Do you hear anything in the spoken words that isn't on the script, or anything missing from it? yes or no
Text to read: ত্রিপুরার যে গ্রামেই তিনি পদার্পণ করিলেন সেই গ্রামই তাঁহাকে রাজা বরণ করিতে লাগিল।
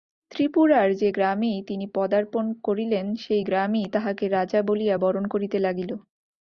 yes